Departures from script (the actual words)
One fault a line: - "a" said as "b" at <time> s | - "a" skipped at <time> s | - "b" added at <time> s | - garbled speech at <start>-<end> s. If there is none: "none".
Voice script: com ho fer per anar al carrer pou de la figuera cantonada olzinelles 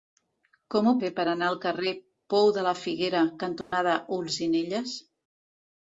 none